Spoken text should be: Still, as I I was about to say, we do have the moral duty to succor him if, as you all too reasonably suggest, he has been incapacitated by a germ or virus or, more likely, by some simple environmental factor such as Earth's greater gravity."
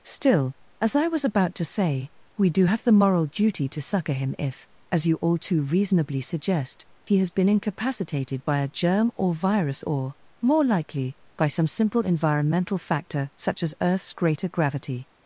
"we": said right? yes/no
yes